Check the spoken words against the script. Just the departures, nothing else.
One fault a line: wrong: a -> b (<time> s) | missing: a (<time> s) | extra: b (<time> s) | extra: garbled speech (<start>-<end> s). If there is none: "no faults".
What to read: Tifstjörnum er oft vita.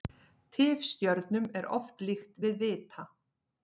extra: líkt við (2.1 s)